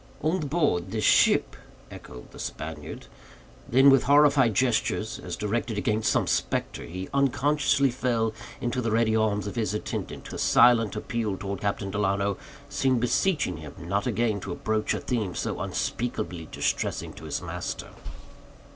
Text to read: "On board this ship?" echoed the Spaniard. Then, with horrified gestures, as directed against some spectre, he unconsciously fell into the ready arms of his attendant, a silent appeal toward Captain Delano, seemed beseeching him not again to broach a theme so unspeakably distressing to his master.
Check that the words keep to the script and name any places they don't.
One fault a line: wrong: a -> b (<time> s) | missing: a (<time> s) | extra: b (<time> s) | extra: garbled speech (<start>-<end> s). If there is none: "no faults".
no faults